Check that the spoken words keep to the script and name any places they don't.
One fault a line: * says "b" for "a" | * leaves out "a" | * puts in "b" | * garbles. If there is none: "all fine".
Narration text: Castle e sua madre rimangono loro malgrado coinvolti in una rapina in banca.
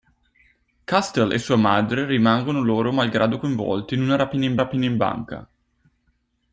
* puts in "rapina in"